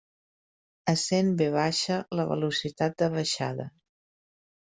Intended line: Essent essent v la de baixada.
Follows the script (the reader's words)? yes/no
no